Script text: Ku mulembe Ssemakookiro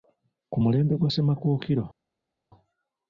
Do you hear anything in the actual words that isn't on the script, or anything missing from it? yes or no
yes